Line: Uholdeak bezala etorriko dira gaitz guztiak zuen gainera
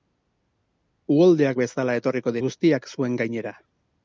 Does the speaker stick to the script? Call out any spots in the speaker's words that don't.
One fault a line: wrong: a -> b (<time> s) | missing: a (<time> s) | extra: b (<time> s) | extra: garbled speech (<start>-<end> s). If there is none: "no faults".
missing: dira gaitz (2.4 s)